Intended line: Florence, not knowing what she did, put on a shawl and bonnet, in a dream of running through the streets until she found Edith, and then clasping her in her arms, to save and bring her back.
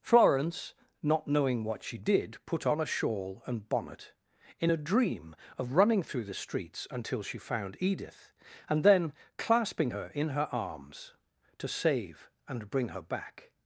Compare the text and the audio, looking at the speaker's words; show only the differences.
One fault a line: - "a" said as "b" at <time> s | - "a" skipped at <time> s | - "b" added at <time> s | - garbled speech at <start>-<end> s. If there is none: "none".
none